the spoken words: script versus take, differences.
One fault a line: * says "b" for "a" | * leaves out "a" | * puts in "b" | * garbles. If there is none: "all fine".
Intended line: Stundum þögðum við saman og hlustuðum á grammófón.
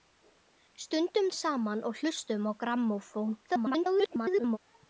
* leaves out "þögðum"
* garbles